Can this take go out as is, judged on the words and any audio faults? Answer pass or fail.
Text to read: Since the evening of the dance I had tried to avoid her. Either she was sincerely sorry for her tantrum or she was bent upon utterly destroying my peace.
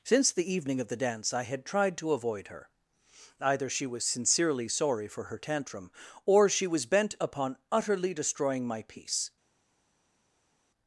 pass